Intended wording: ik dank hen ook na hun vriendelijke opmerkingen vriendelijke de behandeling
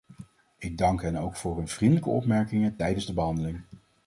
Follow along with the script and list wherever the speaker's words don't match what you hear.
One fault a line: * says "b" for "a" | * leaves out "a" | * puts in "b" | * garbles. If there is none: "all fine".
* says "voor" for "na"
* says "tijdens" for "vriendelijke"